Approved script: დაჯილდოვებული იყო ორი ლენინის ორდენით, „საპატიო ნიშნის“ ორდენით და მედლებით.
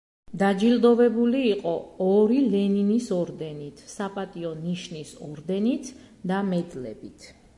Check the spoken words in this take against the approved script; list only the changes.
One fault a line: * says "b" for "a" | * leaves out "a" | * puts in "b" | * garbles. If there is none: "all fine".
all fine